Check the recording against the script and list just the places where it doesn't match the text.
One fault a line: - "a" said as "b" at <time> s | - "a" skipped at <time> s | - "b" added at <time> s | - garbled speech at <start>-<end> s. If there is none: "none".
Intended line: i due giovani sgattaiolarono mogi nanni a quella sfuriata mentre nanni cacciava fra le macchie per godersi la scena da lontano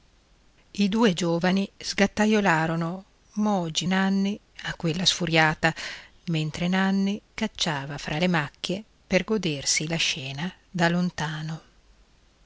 none